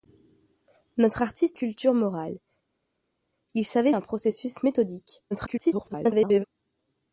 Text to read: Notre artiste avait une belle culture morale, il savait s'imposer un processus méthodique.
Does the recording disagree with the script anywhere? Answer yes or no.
yes